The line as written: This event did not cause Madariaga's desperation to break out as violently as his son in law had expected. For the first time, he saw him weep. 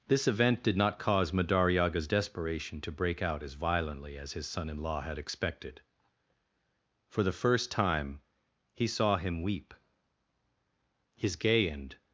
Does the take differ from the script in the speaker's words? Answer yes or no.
yes